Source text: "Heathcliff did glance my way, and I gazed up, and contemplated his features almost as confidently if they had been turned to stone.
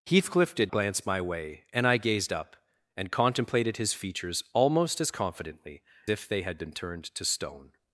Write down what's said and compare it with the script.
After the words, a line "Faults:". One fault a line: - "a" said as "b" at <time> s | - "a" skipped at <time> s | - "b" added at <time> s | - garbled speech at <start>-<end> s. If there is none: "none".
"Heathcliff did glance my way, and I gazed up, and contemplated his features almost as confidently if they had been turned to stone.
Faults:
none